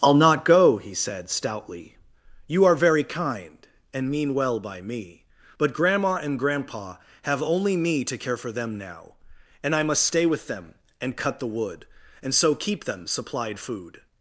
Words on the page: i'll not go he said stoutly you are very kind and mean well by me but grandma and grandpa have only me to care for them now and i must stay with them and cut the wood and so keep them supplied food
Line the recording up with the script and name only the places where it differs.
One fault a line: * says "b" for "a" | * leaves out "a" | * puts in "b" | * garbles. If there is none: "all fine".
all fine